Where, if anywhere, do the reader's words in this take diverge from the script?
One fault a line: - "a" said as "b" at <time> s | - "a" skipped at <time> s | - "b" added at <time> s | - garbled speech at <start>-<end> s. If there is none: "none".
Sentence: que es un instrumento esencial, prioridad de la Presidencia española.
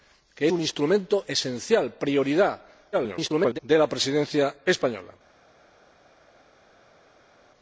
- "es" skipped at 0.5 s
- garbled speech at 2.9-3.6 s